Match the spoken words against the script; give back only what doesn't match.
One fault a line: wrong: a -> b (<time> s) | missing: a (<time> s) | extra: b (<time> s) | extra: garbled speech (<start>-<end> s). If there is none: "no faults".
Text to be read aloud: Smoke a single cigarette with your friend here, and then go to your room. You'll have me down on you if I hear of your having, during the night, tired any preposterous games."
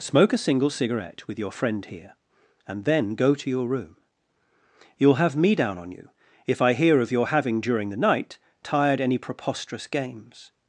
no faults